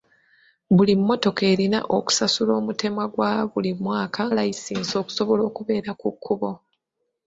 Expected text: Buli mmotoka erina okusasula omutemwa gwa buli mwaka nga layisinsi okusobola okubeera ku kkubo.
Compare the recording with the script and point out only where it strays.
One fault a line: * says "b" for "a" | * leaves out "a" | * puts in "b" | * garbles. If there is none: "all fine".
* leaves out "nga"